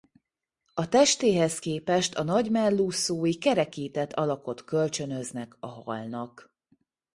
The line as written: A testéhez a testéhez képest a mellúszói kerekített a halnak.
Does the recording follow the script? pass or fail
fail